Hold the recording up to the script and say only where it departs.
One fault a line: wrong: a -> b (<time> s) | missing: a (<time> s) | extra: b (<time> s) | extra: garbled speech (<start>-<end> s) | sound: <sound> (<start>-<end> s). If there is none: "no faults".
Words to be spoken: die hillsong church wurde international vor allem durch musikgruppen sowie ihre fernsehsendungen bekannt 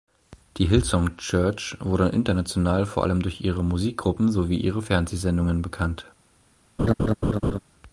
extra: ihre (3.4 s)
sound: laugh (6.8-7.6 s)